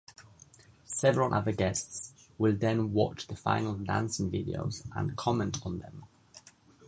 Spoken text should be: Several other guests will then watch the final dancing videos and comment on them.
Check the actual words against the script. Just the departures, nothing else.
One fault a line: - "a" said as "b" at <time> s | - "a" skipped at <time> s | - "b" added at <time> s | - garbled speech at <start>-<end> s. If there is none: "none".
none